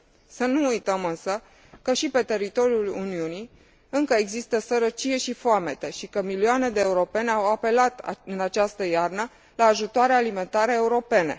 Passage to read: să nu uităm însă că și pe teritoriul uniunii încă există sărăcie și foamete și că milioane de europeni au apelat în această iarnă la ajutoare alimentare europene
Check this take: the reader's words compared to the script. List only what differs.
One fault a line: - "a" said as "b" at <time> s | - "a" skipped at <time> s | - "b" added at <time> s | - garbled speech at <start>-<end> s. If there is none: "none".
none